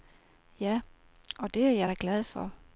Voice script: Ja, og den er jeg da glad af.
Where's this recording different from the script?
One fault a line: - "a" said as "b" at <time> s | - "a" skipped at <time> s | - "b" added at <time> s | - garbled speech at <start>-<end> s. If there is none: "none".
- "den" said as "det" at 1.5 s
- "af" said as "for" at 2.2 s